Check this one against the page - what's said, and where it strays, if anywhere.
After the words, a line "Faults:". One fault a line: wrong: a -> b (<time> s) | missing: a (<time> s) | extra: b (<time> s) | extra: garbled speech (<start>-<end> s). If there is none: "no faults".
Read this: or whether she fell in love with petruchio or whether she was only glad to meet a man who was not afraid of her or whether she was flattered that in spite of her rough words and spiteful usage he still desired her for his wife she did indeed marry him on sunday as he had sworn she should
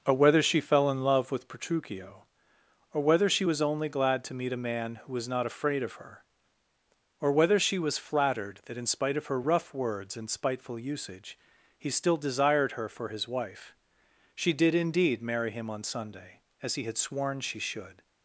or whether she fell in love with petruchio or whether she was only glad to meet a man who was not afraid of her or whether she was flattered that in spite of her rough words and spiteful usage he still desired her for his wife she did indeed marry him on sunday as he had sworn she should
Faults:
no faults